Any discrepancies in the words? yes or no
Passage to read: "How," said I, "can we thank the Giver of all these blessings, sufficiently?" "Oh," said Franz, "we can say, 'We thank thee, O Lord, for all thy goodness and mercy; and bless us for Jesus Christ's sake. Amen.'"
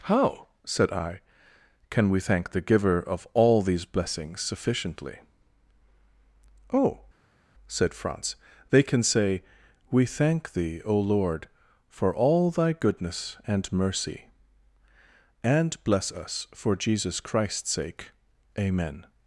yes